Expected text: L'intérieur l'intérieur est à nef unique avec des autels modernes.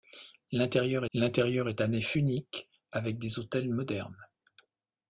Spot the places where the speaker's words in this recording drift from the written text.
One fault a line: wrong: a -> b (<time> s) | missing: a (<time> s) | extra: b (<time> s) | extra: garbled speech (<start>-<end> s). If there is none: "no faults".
no faults